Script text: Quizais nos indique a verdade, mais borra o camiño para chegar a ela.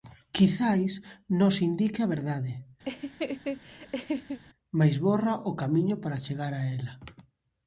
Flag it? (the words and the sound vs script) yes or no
yes